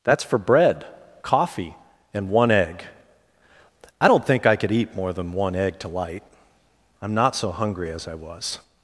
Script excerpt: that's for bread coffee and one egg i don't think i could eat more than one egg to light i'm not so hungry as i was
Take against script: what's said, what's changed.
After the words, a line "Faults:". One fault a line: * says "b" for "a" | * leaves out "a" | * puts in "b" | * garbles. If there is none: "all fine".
that's for bread coffee and one egg i don't think i could eat more than one egg to light i'm not so hungry as i was
Faults:
all fine